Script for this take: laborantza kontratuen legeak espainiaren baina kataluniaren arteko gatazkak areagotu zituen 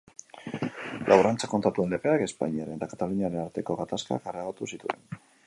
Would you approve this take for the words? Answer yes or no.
no